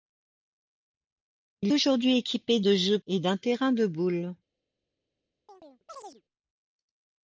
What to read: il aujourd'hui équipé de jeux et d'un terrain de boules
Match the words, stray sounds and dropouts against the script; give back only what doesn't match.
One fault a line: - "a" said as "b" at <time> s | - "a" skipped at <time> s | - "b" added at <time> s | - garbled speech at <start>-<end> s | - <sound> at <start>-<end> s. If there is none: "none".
- chirp at 5.5-6.2 s